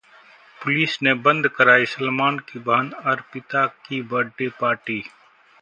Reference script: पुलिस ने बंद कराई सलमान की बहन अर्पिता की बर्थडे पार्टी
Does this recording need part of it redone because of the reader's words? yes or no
no